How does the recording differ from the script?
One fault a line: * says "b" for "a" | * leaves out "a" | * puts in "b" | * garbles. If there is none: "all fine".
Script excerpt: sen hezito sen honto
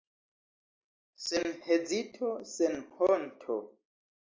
all fine